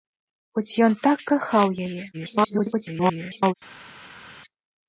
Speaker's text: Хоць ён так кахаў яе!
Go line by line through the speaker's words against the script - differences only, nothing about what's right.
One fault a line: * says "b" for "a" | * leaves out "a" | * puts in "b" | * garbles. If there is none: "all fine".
* garbles